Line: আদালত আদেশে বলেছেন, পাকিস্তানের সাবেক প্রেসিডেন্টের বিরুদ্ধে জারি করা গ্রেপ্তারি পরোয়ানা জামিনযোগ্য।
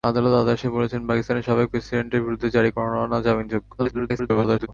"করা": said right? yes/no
no